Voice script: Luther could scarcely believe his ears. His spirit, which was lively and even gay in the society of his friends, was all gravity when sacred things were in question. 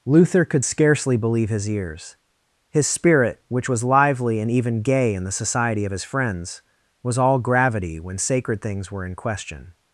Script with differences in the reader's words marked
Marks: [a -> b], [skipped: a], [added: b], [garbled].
Luther could scarcely believe his ears. His spirit, which was lively and even gay in the society of his friends, was all gravity when sacred things were in question.